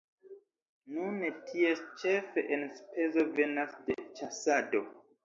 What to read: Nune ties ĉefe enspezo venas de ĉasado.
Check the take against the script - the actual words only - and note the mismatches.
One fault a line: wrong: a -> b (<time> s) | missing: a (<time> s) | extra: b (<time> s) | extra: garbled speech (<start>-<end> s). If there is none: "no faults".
no faults